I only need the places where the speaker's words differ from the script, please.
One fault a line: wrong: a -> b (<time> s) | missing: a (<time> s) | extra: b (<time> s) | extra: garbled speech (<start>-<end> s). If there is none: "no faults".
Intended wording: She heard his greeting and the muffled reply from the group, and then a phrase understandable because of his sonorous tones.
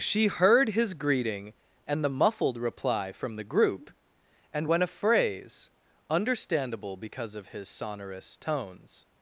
wrong: then -> when (4.6 s)